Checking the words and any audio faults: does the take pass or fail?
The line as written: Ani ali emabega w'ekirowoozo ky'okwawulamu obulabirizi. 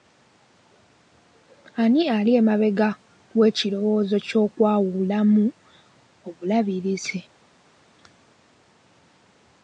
pass